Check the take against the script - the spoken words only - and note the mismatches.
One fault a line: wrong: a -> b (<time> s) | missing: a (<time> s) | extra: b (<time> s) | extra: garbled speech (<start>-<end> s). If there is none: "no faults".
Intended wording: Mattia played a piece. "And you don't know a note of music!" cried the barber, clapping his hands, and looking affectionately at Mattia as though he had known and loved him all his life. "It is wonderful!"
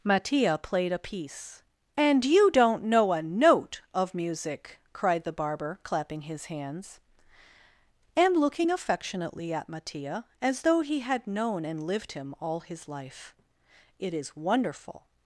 wrong: loved -> lived (11.8 s)